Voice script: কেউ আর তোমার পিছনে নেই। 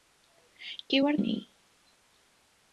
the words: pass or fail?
fail